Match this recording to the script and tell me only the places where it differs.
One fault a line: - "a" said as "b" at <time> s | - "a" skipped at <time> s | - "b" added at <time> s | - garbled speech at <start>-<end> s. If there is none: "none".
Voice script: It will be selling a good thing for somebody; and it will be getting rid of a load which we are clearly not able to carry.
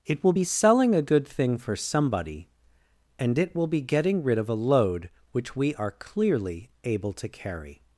- "not" skipped at 6.7 s